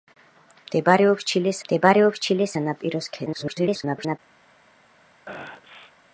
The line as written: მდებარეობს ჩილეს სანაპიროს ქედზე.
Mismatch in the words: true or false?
true